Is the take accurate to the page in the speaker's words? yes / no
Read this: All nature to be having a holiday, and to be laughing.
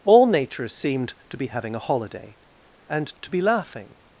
no